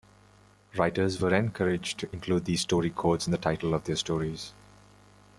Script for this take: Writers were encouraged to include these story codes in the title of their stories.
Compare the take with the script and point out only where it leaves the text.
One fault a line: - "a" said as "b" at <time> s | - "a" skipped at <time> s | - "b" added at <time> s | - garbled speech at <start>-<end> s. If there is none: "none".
none